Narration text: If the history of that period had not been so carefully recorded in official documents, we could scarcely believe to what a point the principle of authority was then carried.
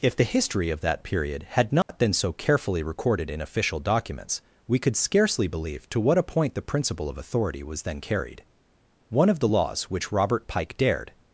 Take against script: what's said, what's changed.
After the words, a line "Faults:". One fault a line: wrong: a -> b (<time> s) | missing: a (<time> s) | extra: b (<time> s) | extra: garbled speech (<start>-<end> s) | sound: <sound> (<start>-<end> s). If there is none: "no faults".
If the history of that period had not been so carefully recorded in official documents, we could scarcely believe to what a point the principle of authority was then carried. One of the laws which Robert Pike dared
Faults:
sound: dropout (1.8-1.9 s)
extra: One of the laws which Robert Pike dared (9.1 s)